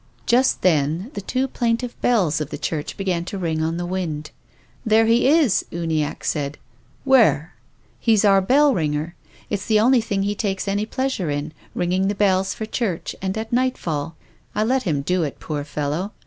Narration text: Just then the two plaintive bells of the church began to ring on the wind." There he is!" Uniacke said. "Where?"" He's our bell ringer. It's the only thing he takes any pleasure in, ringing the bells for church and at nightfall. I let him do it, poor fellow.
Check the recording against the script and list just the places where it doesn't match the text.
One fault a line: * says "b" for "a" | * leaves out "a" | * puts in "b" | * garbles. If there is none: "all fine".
all fine